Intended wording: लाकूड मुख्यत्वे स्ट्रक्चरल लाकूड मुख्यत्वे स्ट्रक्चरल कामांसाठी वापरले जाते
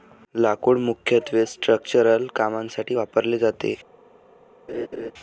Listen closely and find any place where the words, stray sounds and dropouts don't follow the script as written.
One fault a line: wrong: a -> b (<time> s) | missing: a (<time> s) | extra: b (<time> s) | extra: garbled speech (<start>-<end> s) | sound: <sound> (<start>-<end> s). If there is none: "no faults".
missing: लाकूड मुख्यत्वे स्ट्रक्चरल (2.3 s)
sound: laugh (4.7-5.1 s)